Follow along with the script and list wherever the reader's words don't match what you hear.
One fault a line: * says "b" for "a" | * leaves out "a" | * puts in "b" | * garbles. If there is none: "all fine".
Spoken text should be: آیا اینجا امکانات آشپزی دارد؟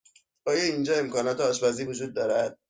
* puts in "وجود"